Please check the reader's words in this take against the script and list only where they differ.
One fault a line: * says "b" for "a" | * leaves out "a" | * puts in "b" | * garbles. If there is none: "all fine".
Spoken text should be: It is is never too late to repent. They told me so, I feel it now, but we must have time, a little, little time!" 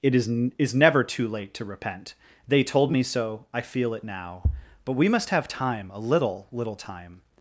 all fine